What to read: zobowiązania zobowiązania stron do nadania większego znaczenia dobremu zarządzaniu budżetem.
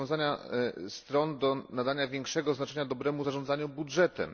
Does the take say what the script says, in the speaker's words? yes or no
no